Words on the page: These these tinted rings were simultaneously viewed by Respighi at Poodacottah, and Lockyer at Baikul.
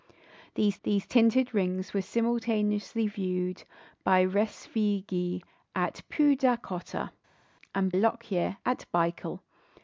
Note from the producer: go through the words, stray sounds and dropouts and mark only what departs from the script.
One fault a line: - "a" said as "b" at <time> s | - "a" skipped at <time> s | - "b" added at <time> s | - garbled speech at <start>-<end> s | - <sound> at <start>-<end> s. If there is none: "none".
none